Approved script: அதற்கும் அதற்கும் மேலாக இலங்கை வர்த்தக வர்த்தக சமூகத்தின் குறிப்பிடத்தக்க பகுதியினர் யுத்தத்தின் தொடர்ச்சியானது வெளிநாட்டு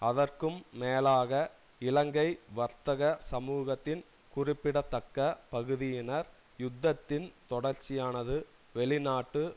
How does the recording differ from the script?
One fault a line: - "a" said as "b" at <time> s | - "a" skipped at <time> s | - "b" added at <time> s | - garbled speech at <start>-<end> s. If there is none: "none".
- "அதற்கும்" skipped at 0.6 s
- "வர்த்தக" skipped at 3.0 s